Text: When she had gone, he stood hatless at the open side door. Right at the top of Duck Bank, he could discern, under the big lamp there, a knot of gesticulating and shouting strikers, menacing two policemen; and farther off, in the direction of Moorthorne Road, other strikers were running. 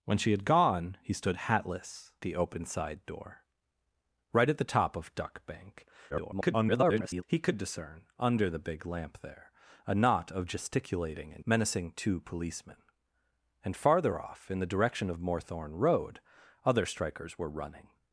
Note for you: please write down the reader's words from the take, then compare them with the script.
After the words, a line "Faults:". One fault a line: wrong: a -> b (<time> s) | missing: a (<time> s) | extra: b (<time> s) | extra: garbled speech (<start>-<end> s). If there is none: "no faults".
When she had gone, he stood hatless the open side door. Right at the top of Duck Bank, [garbled] he could discern, under the big lamp there, a knot of gesticulating and menacing two policemen; and farther off, in the direction of Moorthorne Road, other strikers were running.
Faults:
missing: at (2.1 s)
extra: garbled speech (6.1-7.2 s)
missing: shouting strikers (11.5 s)